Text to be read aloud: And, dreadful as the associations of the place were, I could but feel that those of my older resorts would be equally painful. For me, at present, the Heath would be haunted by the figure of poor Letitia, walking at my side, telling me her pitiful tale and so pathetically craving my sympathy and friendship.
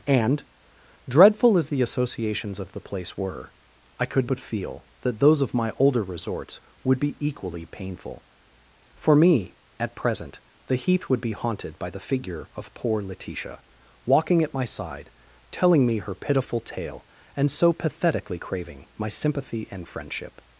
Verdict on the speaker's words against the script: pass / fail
pass